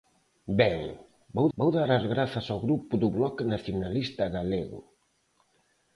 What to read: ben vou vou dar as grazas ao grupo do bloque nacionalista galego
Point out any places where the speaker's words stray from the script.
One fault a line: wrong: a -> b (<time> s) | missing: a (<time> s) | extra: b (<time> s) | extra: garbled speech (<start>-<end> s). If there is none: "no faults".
no faults